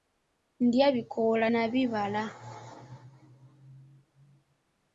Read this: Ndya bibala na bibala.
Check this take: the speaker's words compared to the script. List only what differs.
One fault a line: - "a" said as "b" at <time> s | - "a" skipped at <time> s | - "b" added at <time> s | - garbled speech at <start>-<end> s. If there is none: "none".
- "bibala" said as "bikoola" at 0.9 s